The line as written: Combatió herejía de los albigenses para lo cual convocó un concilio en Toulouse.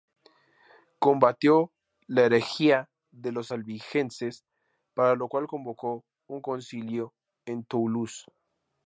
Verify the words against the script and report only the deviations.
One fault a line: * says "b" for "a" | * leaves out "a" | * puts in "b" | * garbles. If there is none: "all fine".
* puts in "la"